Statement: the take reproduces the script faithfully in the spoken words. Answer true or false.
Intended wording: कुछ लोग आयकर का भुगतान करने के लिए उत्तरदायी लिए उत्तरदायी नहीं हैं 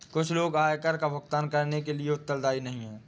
false